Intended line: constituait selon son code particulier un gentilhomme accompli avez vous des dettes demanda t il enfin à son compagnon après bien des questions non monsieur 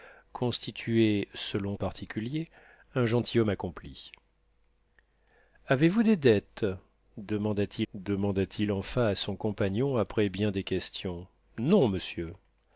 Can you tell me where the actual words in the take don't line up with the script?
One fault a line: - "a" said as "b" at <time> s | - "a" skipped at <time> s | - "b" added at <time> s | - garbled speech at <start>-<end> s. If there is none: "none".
- "son code" skipped at 1.8 s
- "demanda t" added at 7.9 s